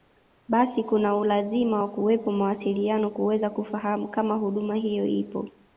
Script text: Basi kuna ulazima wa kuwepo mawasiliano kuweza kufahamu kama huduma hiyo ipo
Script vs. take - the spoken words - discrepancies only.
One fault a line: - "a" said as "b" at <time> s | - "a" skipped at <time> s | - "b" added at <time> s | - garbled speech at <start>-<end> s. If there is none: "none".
none